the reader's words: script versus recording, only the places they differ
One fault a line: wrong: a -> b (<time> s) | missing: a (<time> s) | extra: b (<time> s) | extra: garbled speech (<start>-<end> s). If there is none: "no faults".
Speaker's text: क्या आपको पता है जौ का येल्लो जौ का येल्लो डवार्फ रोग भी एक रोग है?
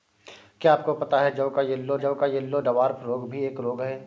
no faults